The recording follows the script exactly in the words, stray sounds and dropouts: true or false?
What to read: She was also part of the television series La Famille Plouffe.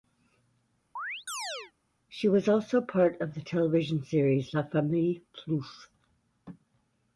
false